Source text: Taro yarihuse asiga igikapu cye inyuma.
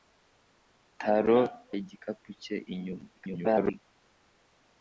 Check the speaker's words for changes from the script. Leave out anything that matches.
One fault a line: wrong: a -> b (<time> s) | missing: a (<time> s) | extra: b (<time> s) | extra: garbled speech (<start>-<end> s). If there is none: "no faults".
missing: yarihuse asiga (1.4 s)
extra: garbled speech (3.2-3.8 s)